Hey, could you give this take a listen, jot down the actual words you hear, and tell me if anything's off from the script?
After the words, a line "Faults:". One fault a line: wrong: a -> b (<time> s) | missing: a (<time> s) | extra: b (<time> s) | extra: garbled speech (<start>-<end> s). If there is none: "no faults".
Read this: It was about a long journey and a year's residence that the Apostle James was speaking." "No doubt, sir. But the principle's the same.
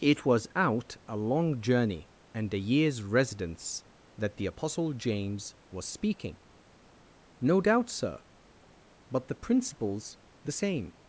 It was out a long journey and a year's residence that the Apostle James was speaking." "No doubt, sir. But the principle's the same.
Faults:
wrong: about -> out (0.6 s)